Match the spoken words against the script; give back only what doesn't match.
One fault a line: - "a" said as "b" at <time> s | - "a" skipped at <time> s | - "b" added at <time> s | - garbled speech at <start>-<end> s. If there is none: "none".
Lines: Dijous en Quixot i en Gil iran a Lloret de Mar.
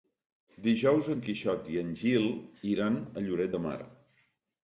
none